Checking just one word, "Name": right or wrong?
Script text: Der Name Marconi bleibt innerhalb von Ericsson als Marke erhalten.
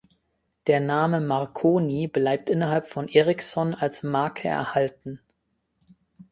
right